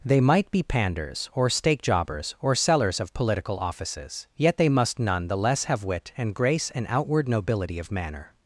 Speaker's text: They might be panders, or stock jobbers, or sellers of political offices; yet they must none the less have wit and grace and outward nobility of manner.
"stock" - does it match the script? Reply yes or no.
no